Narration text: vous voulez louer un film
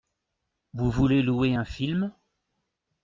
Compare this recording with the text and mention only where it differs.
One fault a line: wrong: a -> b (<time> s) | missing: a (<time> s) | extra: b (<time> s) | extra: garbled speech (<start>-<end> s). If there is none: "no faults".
no faults